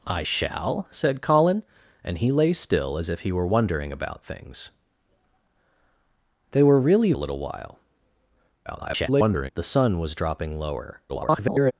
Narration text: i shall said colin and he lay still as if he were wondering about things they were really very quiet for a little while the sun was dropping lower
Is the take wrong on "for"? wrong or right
wrong